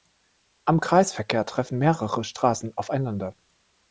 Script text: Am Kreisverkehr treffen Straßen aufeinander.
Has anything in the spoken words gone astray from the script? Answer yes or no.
yes